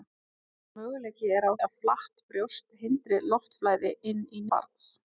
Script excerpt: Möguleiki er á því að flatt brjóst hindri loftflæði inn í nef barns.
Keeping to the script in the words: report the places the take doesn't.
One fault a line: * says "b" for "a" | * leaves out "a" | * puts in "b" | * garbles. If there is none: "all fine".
* leaves out "því"
* leaves out "nef"